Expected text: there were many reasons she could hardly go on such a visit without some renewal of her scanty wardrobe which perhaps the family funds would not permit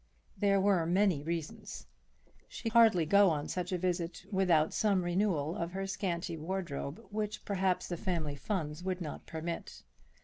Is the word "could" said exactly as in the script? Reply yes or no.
no